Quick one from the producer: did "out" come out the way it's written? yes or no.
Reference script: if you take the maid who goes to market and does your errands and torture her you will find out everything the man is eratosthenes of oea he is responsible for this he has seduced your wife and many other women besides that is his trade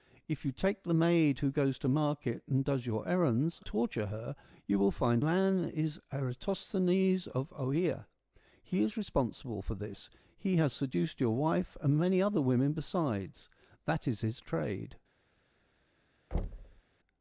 no